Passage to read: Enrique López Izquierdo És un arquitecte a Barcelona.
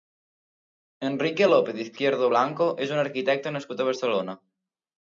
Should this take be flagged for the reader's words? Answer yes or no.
yes